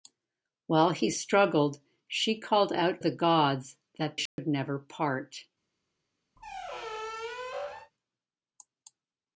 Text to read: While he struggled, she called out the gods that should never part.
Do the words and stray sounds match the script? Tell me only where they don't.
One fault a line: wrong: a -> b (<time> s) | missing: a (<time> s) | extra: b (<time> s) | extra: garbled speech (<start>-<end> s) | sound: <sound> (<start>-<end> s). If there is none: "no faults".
sound: dropout (4.3-4.4 s)
sound: squeak (6.4-7.9 s)